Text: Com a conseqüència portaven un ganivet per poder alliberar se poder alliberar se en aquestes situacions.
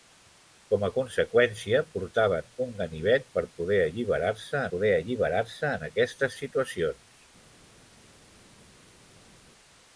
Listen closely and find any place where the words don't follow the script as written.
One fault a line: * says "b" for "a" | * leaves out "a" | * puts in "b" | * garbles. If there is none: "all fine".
all fine